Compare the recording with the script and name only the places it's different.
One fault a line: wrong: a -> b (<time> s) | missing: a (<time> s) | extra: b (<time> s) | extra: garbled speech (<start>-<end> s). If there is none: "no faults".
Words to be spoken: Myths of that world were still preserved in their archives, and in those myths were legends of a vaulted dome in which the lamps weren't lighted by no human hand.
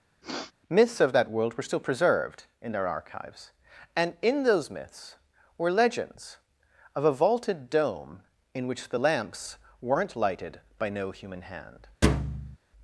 no faults